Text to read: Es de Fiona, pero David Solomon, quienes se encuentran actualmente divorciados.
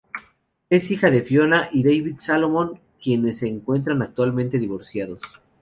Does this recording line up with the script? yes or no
no